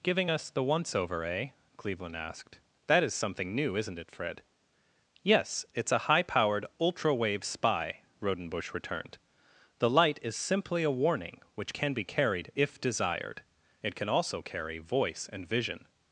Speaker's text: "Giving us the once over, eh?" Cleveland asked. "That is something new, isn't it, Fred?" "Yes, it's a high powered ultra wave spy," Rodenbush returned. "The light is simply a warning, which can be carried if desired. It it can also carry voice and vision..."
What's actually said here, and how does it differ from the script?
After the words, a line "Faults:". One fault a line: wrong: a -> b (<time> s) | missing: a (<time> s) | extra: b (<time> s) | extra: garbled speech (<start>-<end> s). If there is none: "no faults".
"Giving us the once over, eh?" Cleveland asked. "That is something new, isn't it, Fred?" "Yes, it's a high powered ultra wave spy," Rodenbush returned. "The light is simply a warning, which can be carried if desired. It can also carry voice and vision..."
Faults:
missing: it (14.0 s)